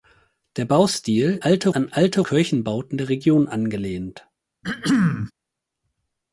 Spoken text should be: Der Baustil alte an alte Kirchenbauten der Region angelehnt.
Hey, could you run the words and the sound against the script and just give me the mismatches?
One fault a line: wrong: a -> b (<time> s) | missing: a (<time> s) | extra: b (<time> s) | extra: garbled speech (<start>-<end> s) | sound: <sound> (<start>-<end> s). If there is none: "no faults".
sound: throat clearing (4.6-5.3 s)